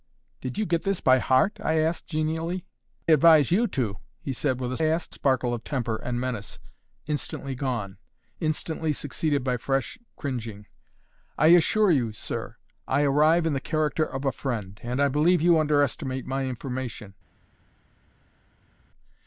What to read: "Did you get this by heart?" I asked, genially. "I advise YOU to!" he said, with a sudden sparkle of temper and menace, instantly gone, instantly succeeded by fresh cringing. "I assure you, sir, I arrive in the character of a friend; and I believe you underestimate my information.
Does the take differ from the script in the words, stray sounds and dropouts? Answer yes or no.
yes